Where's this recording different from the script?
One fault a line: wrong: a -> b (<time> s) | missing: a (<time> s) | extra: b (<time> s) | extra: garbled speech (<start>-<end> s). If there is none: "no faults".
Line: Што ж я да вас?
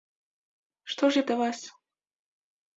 no faults